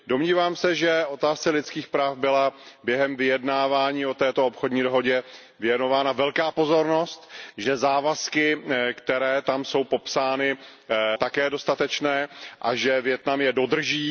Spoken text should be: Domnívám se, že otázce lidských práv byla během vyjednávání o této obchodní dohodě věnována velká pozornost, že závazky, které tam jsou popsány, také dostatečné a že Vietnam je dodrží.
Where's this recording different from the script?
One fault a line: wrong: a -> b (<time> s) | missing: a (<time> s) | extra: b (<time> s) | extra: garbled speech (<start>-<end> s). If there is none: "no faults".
no faults